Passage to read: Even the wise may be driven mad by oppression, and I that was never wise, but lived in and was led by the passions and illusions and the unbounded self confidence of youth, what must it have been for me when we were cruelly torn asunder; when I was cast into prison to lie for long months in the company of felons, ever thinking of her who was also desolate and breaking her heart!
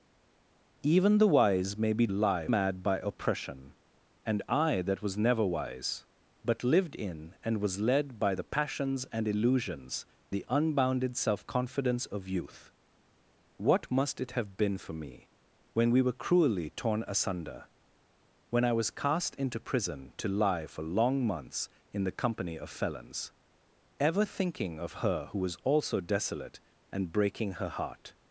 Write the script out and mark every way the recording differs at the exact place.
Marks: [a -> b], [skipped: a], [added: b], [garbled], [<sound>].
Even the wise may be [driven -> lie] mad by oppression, and I that was never wise, but lived in and was led by the passions and illusions [skipped: and] the unbounded self confidence of youth, what must it have been for me when we were cruelly torn asunder; when I was cast into prison to lie for long months in the company of felons, ever thinking of her who was also desolate and breaking her heart!